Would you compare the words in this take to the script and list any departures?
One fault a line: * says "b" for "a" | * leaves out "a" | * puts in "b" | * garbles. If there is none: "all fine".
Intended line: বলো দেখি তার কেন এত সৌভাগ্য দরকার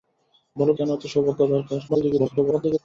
* leaves out "দেখি তার"
* garbles